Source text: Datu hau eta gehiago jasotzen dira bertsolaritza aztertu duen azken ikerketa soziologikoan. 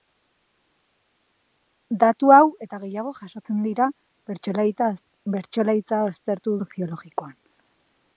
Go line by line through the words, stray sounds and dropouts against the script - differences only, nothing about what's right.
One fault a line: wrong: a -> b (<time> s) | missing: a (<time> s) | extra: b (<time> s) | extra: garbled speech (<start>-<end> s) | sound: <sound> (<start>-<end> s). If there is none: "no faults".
missing: duen azken ikerketa (6.6 s)